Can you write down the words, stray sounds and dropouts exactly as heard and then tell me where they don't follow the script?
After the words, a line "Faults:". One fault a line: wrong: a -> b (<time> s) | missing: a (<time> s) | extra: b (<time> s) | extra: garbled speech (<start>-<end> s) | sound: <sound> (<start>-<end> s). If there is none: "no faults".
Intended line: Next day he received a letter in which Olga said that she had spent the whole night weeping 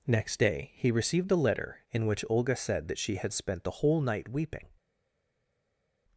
Next day he received a letter in which Olga said that she had spent the whole night weeping
Faults:
no faults